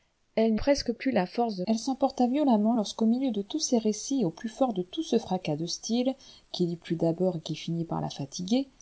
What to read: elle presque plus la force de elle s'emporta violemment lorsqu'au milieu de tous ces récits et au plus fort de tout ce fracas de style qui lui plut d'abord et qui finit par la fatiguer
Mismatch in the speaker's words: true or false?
false